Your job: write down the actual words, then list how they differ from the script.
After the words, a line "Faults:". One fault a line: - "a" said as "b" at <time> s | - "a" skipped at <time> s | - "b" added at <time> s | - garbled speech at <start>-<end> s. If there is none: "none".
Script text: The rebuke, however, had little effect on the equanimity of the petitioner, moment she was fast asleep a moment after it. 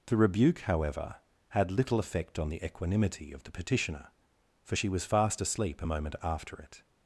The rebuke, however, had little effect on the equanimity of the petitioner, for she was fast asleep a moment after it.
Faults:
- "moment" said as "for" at 4.6 s